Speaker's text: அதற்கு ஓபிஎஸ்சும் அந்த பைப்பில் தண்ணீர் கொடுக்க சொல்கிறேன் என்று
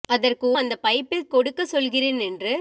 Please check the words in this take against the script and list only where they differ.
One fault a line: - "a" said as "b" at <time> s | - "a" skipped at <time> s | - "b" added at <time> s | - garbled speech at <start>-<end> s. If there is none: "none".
- "ஓபிஎஸ்சும்" skipped at 0.5 s
- "தண்ணீர்" skipped at 1.3 s